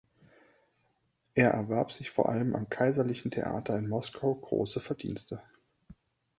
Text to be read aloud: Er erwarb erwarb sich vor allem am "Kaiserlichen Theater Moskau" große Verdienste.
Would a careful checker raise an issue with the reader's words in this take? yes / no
yes